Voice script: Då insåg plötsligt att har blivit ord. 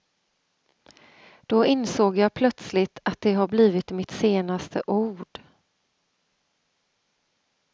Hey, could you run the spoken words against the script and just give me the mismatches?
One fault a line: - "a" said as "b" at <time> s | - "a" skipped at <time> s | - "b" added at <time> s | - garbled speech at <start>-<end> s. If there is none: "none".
- "jag" added at 2.2 s
- "det" added at 3.2 s
- "mitt senaste" added at 3.9 s